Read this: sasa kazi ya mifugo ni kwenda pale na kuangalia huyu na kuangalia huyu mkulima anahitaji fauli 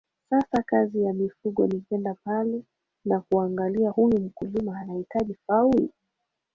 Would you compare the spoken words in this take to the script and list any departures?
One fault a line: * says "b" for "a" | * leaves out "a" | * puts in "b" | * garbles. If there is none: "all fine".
* leaves out "na kuangalia huyu"